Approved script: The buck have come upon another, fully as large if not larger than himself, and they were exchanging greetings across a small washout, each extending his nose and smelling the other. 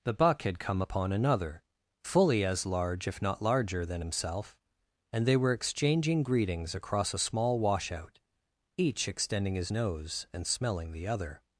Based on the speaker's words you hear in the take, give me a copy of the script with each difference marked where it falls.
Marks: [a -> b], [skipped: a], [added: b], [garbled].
The buck [have -> had] come upon another, fully as large if not larger than himself, and they were exchanging greetings across a small washout, each extending his nose and smelling the other.